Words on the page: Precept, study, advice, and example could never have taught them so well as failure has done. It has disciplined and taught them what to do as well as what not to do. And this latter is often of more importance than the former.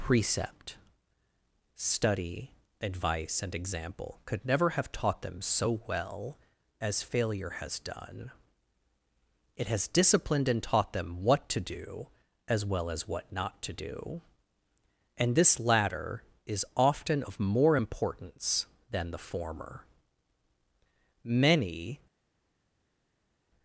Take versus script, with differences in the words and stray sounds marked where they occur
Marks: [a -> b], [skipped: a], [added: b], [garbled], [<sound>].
Precept, study, advice, and example could never have taught them so well as failure has done. It has disciplined and taught them what to do as well as what not to do. And this latter is often of more importance than the former. [added: Many]